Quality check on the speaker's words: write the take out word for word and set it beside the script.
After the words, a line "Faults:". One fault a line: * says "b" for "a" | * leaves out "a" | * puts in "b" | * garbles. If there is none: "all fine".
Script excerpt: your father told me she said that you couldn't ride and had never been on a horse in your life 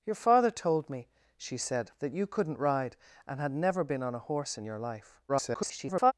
your father told me she said that you couldn't ride and had never been on a horse in your life [garbled]
Faults:
* garbles